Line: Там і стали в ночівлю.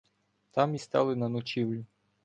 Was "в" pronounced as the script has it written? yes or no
no